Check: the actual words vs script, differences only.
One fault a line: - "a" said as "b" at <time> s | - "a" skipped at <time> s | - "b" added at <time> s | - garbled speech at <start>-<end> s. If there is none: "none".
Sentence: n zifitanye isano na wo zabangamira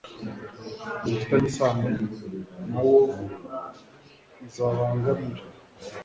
none